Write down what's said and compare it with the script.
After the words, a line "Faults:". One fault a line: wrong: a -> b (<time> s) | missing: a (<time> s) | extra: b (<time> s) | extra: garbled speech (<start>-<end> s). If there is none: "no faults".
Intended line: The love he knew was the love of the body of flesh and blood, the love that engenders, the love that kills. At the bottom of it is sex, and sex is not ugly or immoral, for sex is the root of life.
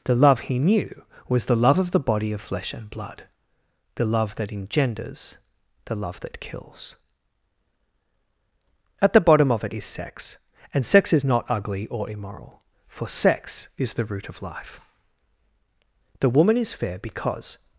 The love he knew was the love of the body of flesh and blood, the love that engenders, the love that kills. At the bottom of it is sex, and sex is not ugly or immoral, for sex is the root of life. The woman is fair because
Faults:
extra: The woman is fair because (16.2 s)